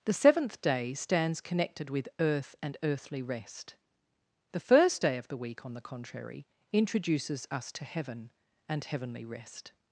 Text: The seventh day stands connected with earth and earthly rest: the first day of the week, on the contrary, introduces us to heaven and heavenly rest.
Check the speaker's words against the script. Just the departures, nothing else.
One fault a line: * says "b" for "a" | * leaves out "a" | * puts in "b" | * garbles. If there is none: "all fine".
all fine